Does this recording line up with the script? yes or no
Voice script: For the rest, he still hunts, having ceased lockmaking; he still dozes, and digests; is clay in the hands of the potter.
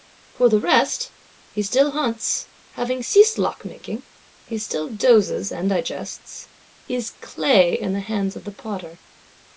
yes